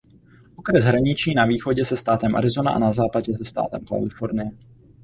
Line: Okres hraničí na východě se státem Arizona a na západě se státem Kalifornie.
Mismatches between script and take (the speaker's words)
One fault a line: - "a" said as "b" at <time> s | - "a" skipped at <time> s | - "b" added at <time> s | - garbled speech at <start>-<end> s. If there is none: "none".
none